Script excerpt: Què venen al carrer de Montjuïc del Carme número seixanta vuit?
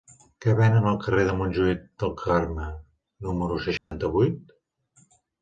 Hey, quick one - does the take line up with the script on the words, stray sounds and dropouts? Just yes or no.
no